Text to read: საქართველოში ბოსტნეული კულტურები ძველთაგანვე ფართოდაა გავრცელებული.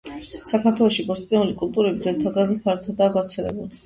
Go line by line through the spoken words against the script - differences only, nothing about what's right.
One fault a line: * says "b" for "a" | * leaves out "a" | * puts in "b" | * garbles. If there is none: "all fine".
all fine